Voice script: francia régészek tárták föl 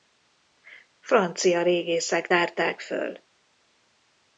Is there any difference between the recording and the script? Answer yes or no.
no